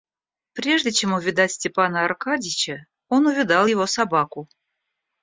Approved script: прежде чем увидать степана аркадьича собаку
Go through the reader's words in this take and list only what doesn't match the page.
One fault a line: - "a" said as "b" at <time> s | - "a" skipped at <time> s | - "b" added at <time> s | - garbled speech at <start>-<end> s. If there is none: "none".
- "он увидал его" added at 3.1 s